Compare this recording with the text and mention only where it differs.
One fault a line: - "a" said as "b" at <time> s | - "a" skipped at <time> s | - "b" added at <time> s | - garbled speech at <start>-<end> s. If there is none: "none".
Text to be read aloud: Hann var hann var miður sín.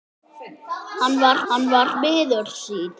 none